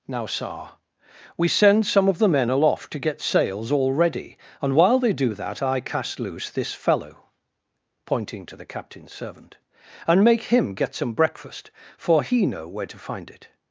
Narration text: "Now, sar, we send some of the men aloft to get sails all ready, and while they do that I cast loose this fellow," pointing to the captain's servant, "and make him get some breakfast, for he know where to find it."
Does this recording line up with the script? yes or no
yes